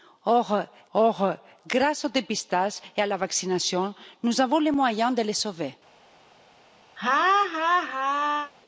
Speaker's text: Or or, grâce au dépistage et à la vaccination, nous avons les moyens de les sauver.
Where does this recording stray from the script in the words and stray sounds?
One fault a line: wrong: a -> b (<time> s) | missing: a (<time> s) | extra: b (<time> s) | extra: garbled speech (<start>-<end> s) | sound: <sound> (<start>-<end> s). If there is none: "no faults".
sound: laugh (7.0-8.5 s)